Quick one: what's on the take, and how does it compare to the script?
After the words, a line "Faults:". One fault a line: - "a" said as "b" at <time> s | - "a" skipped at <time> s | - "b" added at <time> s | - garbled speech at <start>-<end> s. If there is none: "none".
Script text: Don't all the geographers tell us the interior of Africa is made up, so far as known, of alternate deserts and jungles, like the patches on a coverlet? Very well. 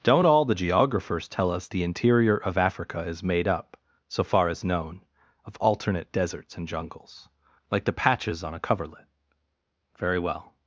Don't all the geographers tell us the interior of Africa is made up, so far as known, of alternate deserts and jungles, like the patches on a coverlet? Very well.
Faults:
none